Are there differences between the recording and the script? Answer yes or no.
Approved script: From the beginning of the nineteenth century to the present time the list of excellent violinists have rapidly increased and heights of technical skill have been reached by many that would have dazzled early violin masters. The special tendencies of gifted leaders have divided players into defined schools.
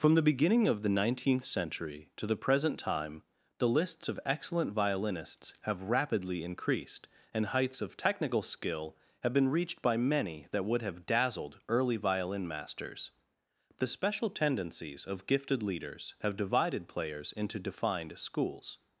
yes